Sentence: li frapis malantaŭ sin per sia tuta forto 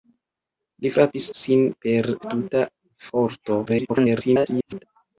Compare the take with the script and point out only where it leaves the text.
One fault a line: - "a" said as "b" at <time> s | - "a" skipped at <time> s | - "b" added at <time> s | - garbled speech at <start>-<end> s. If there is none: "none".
- "malantaŭ" skipped at 1.2 s
- "sia" skipped at 2.1 s
- garbled speech at 3.7-4.8 s